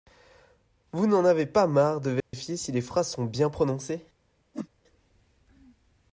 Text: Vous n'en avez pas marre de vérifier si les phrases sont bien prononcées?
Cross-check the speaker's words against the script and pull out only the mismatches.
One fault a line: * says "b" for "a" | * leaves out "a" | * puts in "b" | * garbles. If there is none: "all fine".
all fine